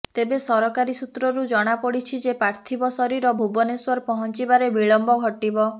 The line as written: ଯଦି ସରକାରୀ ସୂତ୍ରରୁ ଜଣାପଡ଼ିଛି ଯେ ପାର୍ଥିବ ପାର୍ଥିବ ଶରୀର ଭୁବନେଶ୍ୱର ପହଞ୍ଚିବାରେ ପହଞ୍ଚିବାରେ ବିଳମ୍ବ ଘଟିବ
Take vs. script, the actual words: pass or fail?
fail